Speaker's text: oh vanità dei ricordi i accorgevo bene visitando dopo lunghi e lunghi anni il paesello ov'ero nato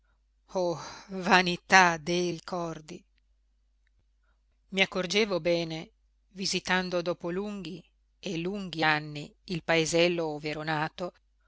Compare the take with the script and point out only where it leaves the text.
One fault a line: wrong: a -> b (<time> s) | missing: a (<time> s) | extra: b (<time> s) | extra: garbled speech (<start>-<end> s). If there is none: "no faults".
no faults